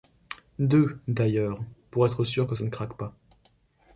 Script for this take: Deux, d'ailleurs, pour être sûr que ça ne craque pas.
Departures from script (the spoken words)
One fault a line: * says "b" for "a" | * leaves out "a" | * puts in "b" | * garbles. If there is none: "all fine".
all fine